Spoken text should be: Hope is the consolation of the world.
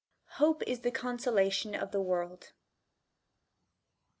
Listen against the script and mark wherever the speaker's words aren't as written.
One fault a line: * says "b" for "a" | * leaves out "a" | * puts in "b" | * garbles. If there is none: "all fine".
all fine